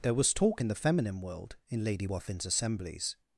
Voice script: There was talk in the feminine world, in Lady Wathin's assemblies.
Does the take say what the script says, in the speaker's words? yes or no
yes